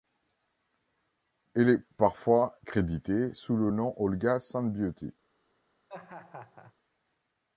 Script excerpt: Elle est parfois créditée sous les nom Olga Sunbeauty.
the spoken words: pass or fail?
fail